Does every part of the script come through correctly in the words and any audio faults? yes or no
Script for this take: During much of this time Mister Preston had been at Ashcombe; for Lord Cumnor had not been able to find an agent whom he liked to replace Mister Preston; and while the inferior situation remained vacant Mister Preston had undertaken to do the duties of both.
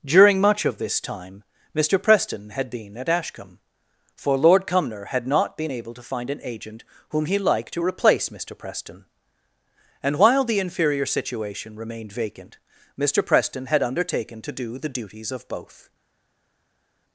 yes